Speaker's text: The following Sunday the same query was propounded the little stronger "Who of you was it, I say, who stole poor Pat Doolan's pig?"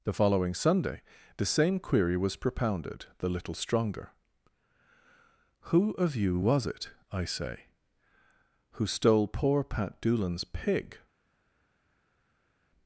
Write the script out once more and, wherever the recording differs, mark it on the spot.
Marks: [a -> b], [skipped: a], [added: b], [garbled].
The following Sunday the same query was propounded the little stronger "Who of you was it, I say, who stole poor Pat Doolan's pig?"